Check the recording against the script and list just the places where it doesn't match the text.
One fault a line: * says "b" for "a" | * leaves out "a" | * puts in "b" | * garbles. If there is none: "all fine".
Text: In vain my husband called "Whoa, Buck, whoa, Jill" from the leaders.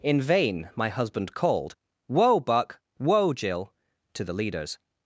* says "to" for "from"